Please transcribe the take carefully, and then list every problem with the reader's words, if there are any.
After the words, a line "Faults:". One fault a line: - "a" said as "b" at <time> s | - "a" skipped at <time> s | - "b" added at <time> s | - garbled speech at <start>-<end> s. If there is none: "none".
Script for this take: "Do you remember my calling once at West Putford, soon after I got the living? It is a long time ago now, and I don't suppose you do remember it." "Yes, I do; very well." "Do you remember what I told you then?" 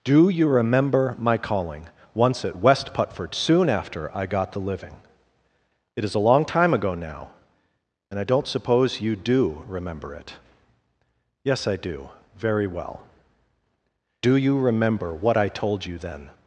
"Do you remember my calling once at West Putford, soon after I got the living? It is a long time ago now, and I don't suppose you do remember it." "Yes, I do; very well." "Do you remember what I told you then?"
Faults:
none